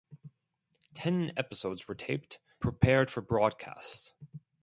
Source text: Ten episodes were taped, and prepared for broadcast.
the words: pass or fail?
fail